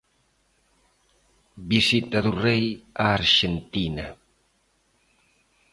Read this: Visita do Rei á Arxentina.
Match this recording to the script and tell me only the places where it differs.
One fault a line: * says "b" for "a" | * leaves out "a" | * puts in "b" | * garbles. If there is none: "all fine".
all fine